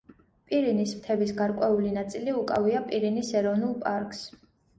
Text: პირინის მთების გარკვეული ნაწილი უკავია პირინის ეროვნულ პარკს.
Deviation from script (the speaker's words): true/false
false